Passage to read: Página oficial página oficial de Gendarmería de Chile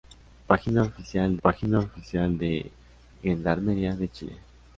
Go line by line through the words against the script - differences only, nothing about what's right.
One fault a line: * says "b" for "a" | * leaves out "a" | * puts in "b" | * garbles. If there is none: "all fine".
all fine